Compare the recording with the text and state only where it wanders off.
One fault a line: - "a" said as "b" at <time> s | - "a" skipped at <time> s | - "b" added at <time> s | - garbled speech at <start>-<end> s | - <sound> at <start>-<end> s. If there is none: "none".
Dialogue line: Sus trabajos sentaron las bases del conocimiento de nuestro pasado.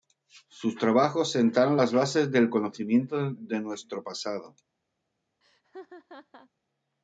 - laugh at 5.4-6.5 s